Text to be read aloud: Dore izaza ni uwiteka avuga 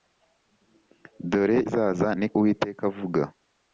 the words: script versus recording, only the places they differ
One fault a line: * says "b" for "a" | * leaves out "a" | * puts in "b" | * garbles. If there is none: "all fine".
all fine